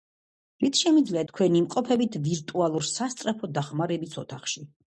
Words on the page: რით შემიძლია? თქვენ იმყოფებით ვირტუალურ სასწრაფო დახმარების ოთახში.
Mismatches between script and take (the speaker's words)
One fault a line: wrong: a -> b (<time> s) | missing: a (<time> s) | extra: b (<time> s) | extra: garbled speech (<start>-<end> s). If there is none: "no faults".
no faults